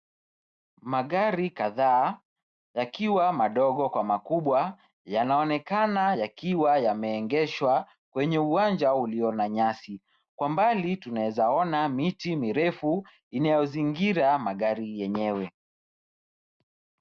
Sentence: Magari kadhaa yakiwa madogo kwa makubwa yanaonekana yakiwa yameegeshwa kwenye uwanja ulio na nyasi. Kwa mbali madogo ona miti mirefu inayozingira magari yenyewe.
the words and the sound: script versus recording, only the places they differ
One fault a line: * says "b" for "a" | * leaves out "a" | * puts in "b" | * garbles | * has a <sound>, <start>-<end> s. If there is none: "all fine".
* says "tunaweza" for "madogo"